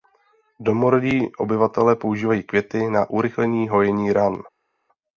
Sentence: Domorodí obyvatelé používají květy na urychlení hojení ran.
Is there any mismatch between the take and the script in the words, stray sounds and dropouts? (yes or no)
no